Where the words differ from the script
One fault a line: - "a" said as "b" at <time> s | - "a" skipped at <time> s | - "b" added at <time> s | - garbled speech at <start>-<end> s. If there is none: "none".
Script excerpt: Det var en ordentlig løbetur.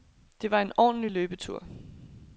none